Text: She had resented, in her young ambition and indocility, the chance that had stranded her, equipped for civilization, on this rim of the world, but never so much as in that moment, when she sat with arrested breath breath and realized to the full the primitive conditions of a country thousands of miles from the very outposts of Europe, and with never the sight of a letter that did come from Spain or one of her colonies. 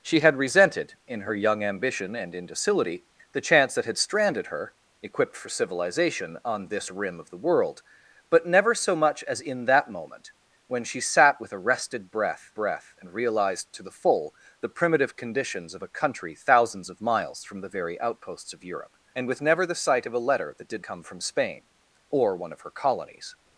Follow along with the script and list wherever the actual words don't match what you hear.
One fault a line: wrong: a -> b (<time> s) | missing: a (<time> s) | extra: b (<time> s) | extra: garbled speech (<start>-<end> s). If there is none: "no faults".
no faults